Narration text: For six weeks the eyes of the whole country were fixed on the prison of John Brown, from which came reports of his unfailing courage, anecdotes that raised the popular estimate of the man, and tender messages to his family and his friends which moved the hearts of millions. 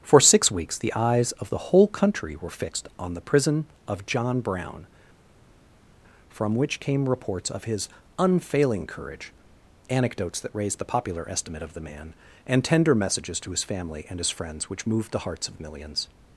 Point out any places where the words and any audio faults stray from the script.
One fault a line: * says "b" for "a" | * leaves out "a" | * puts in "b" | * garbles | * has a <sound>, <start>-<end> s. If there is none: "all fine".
all fine